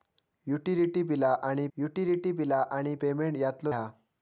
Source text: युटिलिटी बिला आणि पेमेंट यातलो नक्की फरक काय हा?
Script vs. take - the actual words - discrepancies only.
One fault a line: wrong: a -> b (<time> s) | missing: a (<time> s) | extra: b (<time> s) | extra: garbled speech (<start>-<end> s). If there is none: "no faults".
wrong: पेमेंट यातलो नक्की फरक काय -> युटिलिटी बिला आणि पेमेंट यातलो (1.8 s)